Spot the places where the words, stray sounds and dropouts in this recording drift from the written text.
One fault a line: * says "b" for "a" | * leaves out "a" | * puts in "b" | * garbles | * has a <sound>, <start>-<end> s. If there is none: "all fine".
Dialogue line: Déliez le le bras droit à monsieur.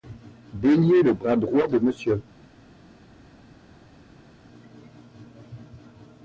* leaves out "le"
* says "de" for "à"